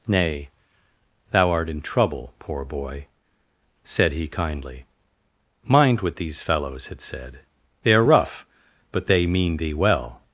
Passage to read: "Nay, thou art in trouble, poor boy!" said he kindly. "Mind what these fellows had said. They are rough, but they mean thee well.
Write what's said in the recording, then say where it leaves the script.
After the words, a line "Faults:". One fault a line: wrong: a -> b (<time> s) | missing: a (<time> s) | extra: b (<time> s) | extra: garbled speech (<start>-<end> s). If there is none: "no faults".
"Nay, thou art in trouble, poor boy!" said he kindly. "Mind what these fellows had said. They are rough, but they mean thee well.
Faults:
no faults